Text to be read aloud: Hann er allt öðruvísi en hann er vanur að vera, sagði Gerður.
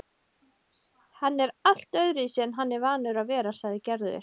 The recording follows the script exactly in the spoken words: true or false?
true